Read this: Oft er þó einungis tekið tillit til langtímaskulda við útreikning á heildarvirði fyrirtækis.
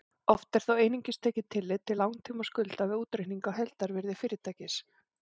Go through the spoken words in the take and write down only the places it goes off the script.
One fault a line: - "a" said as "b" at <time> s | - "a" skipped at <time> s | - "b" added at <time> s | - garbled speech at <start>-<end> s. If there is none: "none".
none